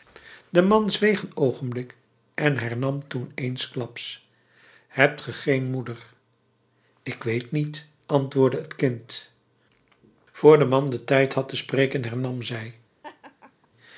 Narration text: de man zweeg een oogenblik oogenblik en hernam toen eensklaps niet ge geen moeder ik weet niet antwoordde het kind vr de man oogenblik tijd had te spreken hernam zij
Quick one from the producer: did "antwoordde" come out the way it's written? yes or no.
yes